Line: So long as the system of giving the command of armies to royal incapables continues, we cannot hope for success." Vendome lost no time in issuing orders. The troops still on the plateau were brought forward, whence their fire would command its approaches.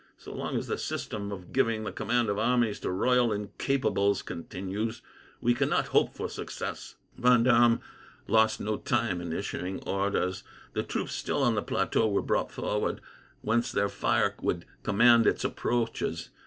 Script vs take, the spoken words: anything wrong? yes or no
no